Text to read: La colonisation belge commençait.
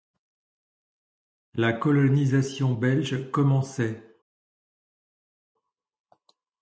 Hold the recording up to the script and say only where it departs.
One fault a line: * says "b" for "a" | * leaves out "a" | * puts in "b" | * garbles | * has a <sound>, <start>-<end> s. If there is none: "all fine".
all fine